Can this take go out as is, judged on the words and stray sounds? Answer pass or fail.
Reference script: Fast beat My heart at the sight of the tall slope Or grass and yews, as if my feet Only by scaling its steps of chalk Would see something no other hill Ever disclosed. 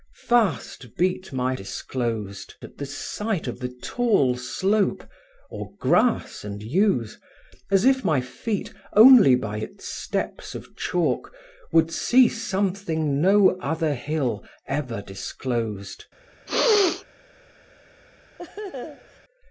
fail